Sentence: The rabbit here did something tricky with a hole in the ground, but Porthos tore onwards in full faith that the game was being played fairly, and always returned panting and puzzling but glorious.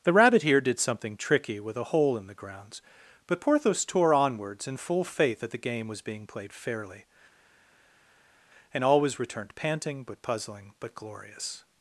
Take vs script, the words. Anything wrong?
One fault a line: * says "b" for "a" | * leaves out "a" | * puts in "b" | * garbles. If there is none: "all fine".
* says "grounds" for "ground"
* says "but" for "and"